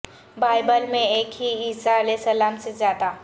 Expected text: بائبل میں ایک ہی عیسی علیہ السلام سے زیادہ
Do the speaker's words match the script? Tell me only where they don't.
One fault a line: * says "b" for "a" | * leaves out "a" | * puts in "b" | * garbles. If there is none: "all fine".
all fine